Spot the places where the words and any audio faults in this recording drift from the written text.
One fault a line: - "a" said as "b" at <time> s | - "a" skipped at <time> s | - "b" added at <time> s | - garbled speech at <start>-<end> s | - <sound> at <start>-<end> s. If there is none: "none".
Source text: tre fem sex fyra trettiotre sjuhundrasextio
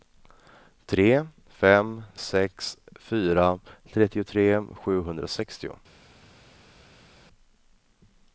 none